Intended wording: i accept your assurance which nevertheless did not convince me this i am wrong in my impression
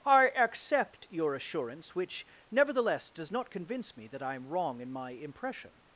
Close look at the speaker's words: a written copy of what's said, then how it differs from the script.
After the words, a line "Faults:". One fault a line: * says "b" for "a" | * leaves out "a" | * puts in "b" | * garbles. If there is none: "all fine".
i accept your assurance which nevertheless does not convince me that i am wrong in my impression
Faults:
* says "does" for "did"
* says "that" for "this"